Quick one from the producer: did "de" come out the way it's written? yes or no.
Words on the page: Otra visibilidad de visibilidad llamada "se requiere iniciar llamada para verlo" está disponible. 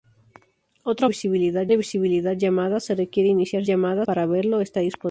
yes